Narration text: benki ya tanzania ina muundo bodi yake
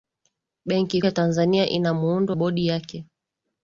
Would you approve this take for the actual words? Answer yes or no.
yes